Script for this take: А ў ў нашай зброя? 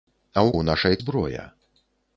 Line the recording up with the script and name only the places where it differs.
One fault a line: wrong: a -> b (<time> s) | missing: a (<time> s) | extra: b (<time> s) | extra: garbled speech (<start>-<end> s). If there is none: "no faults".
no faults